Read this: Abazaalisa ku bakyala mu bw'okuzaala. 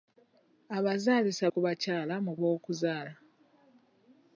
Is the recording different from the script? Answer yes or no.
no